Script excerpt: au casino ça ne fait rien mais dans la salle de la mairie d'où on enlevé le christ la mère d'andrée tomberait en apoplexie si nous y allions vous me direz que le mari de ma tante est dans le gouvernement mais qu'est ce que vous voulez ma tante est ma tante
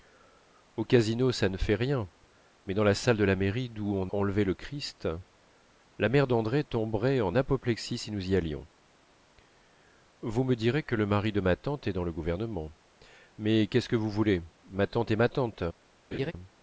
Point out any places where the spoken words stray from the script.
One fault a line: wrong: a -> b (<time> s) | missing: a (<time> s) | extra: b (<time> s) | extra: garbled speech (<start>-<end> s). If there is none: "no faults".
no faults